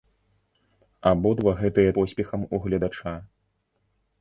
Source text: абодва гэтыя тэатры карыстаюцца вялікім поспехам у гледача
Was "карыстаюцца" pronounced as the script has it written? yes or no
no